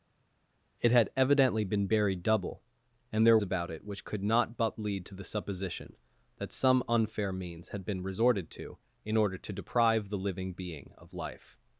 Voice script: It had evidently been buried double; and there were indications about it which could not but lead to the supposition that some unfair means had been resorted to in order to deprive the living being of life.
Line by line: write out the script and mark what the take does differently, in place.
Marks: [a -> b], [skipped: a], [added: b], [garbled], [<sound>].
It had evidently been buried double; and there [skipped: were indications] about it which could not but lead to the supposition that some unfair means had been resorted to in order to deprive the living being of life.